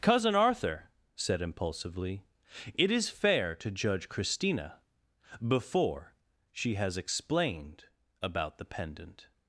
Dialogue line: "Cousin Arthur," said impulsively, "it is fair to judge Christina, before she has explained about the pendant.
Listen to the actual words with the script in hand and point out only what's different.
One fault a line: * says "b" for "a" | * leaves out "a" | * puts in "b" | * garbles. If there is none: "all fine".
all fine